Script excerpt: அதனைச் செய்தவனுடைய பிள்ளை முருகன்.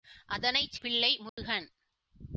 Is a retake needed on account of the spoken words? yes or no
yes